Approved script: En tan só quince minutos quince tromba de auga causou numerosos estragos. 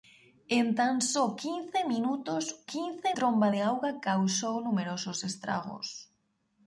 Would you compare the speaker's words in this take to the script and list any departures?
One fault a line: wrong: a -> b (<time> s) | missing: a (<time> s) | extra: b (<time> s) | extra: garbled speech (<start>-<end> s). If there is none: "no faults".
no faults